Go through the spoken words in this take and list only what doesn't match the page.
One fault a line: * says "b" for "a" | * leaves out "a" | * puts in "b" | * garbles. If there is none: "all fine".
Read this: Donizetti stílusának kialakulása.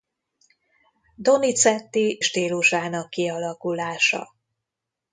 all fine